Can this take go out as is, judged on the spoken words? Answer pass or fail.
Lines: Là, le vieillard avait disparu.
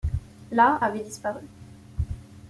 fail